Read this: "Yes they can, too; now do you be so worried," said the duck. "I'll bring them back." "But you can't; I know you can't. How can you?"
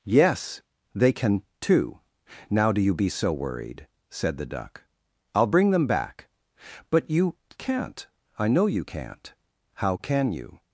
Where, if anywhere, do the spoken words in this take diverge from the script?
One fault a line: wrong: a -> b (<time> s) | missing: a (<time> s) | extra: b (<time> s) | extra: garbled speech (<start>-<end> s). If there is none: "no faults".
no faults